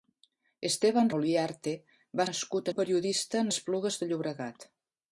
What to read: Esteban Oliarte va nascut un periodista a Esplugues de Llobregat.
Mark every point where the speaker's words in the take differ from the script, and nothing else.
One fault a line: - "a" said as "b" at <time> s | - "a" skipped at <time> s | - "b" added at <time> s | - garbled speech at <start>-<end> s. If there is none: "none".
none